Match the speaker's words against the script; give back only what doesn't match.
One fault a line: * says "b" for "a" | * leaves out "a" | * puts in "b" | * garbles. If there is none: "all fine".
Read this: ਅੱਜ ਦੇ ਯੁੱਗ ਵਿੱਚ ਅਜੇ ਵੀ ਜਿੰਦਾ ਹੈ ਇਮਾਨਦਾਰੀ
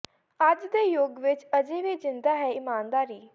all fine